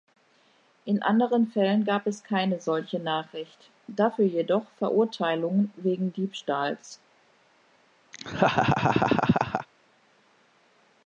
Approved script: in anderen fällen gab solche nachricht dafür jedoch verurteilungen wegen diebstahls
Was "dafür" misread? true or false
false